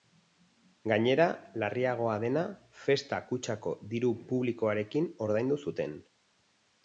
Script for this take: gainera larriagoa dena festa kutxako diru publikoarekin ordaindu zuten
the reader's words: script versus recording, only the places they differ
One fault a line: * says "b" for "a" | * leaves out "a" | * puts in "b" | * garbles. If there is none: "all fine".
all fine